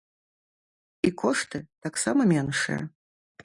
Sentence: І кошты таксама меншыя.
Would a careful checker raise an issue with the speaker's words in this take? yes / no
no